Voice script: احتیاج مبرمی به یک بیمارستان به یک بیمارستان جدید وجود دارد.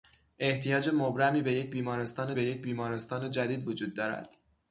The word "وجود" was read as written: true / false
true